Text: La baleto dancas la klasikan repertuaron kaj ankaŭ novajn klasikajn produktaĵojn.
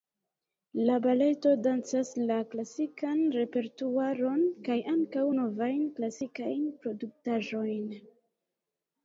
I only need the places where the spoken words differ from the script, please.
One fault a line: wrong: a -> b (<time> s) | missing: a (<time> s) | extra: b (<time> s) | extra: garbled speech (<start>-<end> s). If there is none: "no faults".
no faults